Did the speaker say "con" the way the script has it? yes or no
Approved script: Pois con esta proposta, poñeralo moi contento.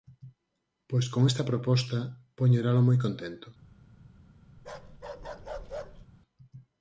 yes